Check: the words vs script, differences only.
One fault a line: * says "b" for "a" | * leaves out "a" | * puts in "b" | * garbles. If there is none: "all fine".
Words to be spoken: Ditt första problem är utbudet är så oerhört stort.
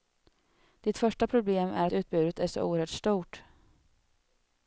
all fine